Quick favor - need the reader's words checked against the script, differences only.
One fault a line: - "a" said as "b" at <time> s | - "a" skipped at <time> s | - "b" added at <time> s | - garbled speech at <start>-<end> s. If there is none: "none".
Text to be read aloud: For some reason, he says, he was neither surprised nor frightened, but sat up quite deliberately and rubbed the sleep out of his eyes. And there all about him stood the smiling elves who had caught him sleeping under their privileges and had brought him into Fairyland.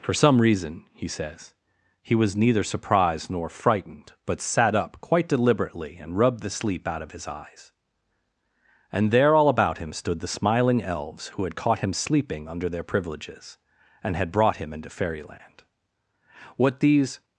- "What these" added at 16.6 s